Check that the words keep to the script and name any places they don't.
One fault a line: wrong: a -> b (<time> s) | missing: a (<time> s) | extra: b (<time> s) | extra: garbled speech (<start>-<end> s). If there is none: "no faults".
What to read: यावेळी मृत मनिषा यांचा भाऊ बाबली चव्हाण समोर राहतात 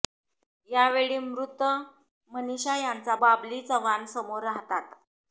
missing: भाऊ (3.1 s)